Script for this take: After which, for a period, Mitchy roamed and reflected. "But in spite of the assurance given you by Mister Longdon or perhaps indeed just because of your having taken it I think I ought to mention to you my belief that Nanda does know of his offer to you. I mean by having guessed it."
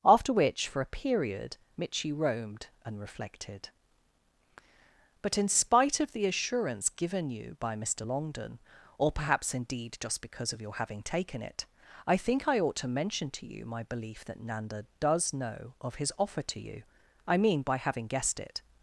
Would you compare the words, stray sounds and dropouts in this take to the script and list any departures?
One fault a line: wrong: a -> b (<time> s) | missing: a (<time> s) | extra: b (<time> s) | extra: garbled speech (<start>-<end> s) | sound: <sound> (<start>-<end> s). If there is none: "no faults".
no faults